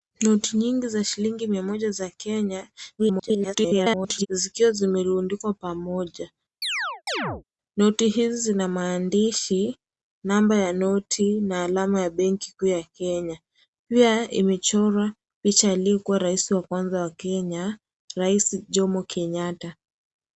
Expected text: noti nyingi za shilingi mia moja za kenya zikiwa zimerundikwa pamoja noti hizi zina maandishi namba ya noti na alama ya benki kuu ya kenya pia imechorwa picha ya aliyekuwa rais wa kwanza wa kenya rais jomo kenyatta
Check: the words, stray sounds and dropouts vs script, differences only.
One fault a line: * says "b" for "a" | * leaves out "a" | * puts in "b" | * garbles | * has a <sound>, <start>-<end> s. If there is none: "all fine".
* garbles
* has a chirp, 6.6-7.4 s